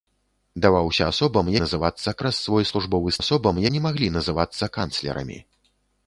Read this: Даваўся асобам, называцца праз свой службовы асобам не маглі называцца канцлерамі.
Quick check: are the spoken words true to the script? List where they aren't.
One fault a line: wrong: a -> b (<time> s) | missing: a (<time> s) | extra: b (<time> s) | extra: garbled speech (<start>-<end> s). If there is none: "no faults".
no faults